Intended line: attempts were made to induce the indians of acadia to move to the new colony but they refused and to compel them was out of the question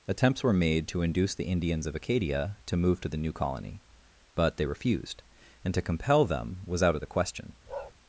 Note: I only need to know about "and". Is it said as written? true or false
true